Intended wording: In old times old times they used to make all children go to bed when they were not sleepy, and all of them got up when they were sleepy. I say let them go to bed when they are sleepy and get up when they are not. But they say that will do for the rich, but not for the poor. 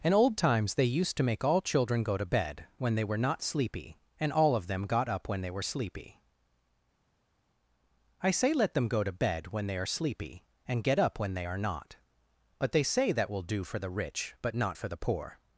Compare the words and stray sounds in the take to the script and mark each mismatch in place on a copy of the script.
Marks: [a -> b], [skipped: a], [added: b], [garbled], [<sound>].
In old times [skipped: old times] they used to make all children go to bed when they were not sleepy, and all of them got up when they were sleepy. I say let them go to bed when they are sleepy and get up when they are not. But they say that will do for the rich, but not for the poor.